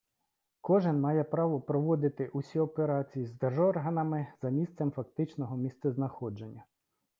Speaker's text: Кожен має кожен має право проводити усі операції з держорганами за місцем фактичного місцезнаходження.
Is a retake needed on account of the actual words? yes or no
yes